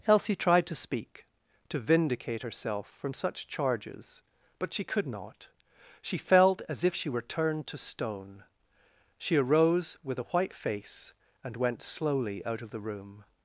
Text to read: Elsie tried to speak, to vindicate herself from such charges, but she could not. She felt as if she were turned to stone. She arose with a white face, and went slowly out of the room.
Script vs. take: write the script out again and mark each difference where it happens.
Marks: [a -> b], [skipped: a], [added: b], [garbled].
Elsie tried to speak, to vindicate herself from such charges, but she could not. She felt as if she were turned to stone. She arose with a white face, and went slowly out of the room.